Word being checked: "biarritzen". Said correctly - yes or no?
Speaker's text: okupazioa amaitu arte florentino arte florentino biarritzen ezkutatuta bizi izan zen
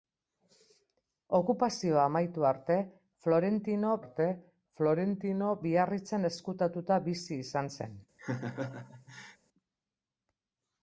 yes